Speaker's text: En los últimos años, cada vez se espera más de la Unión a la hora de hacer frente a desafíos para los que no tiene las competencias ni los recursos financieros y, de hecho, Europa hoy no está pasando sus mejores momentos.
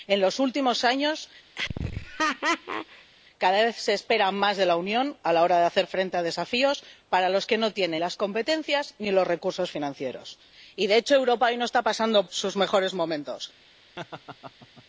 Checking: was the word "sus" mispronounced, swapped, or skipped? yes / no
no